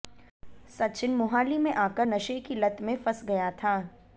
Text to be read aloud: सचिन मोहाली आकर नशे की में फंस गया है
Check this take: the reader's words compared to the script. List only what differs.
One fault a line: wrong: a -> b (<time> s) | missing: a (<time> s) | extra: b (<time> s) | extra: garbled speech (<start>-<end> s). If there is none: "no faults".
extra: में (1.6 s)
extra: लत (2.5 s)
wrong: है -> था (3.5 s)